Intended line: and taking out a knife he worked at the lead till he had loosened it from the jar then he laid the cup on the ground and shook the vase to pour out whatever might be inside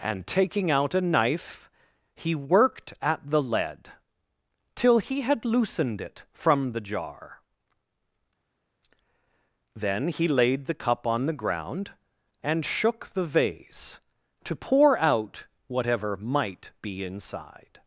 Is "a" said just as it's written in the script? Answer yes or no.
yes